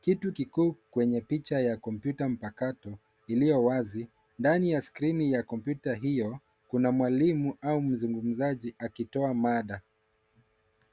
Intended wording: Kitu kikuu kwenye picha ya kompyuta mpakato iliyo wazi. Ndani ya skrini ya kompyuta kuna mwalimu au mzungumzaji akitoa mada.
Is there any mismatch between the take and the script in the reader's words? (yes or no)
yes